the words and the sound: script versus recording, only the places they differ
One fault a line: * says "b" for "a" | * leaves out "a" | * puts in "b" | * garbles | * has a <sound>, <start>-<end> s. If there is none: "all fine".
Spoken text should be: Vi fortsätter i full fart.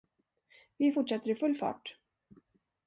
all fine